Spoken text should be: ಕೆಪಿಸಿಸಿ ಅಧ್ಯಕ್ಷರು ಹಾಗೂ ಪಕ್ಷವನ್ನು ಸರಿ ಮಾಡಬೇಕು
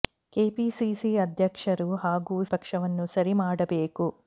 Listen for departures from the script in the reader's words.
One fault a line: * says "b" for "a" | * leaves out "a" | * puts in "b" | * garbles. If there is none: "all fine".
all fine